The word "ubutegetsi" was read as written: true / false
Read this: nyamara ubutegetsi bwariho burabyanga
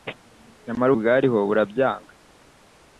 false